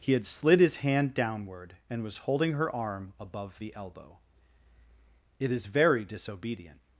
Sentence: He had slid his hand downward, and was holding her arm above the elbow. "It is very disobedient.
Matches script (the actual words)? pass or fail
pass